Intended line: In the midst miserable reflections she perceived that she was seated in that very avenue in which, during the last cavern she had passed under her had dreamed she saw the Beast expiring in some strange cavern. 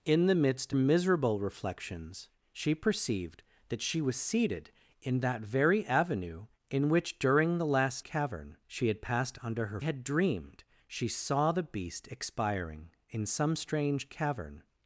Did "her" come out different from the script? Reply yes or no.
no